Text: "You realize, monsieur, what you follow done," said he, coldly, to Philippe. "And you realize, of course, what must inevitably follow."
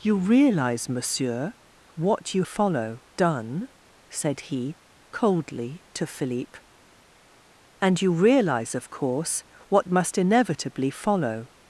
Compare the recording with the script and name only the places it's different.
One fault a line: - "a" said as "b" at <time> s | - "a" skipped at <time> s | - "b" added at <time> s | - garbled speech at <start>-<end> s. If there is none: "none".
none